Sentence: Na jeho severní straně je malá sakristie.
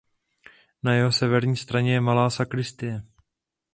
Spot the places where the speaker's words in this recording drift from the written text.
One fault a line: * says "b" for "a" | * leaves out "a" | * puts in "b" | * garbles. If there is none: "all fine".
all fine